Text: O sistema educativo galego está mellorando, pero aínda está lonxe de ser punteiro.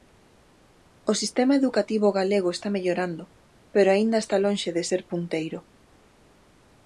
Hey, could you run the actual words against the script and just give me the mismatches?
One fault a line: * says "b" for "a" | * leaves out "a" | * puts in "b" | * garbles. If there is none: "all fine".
all fine